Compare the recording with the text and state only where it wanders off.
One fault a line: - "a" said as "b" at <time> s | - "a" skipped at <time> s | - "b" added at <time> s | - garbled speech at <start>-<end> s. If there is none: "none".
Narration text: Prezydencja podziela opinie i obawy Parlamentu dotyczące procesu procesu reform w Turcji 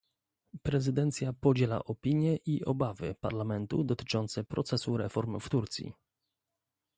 - "procesu" skipped at 5.0 s